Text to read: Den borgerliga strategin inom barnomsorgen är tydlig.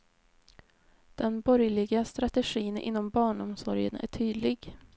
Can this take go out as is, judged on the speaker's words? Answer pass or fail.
pass